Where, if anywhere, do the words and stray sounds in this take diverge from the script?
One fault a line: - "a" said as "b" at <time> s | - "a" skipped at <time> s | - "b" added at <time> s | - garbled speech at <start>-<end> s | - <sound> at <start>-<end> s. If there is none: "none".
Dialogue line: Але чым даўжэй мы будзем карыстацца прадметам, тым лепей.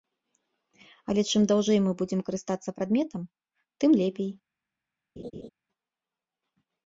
- laugh at 5.2-5.5 s